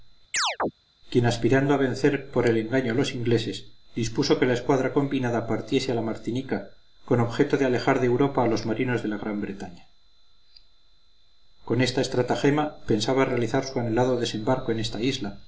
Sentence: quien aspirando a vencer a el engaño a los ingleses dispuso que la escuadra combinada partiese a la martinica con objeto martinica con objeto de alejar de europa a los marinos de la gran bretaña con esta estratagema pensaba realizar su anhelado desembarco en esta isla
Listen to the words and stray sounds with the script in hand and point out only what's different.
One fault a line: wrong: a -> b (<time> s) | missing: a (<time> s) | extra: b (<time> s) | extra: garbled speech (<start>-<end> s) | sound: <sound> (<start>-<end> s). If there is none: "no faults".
sound: chirp (0.3-0.7 s)
wrong: a -> por (2.3 s)
missing: martinica con objeto (7.6 s)